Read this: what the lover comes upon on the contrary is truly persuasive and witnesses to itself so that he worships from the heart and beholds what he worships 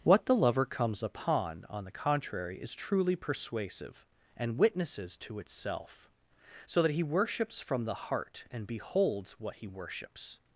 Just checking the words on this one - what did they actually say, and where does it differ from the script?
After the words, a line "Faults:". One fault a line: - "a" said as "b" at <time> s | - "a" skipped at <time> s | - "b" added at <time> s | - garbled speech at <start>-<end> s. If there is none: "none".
what the lover comes upon on the contrary is truly persuasive and witnesses to itself so that he worships from the heart and beholds what he worships
Faults:
none